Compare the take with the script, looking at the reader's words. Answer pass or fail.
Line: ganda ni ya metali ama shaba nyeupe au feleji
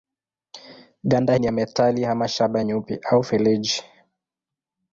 pass